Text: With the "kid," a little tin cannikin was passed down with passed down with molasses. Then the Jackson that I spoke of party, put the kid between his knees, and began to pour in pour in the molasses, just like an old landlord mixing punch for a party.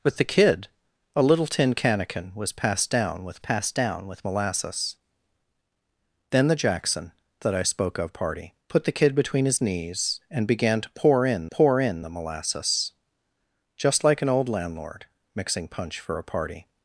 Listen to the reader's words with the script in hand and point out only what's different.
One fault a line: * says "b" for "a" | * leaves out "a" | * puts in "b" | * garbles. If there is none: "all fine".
all fine